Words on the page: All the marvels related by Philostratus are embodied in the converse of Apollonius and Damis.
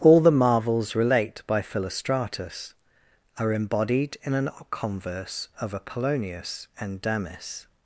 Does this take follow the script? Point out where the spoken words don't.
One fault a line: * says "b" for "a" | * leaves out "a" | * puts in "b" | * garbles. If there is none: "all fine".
* says "relate" for "related"
* says "an" for "the"